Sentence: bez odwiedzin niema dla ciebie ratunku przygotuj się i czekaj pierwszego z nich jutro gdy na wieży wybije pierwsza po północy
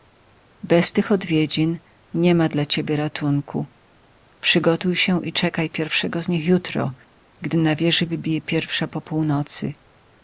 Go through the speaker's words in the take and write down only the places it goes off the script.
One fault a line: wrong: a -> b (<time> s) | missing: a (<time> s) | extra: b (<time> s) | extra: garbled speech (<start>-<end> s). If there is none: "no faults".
extra: tych (0.9 s)